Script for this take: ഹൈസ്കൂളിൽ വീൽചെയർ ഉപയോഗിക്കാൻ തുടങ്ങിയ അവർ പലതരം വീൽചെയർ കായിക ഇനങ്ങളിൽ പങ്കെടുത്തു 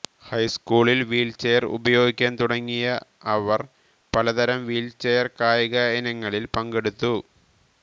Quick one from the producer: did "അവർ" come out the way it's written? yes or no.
yes